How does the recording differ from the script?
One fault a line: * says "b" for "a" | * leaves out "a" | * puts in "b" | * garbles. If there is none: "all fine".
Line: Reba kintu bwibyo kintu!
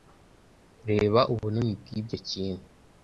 * says "ubunini" for "kintu"